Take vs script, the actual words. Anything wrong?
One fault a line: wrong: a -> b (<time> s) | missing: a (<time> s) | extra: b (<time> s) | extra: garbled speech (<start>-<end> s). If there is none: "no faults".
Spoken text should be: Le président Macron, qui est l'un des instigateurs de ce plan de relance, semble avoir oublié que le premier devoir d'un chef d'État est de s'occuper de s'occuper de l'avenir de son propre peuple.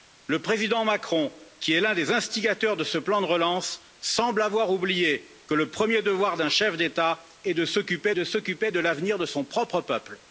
no faults